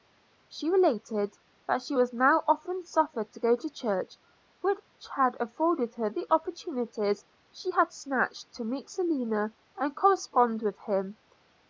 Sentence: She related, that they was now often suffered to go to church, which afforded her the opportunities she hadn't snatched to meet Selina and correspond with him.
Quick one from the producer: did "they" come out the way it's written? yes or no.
no